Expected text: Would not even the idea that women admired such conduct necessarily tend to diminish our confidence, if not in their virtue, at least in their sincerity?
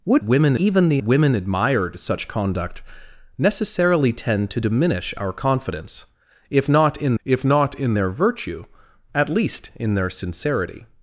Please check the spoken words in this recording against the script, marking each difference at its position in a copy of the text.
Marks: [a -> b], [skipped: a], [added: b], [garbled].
Would [not -> women] even the [skipped: idea that] women admired such conduct necessarily tend to diminish our confidence, if not in [added: if not in] their virtue, at least in their sincerity?